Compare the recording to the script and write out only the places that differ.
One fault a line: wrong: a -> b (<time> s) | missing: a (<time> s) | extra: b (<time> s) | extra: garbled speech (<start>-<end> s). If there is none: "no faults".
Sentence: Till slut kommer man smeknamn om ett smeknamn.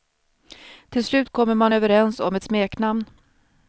wrong: smeknamn -> överens (1.7 s)